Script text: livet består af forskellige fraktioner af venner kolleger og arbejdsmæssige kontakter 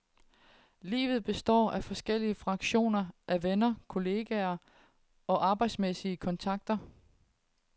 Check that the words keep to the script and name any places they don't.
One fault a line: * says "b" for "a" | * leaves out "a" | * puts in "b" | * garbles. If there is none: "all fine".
all fine